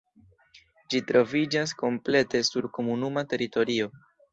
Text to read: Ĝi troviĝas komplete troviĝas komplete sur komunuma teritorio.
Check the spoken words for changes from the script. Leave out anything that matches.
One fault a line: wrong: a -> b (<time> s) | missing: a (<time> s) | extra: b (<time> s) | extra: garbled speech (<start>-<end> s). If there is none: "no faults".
missing: troviĝas komplete (2.5 s)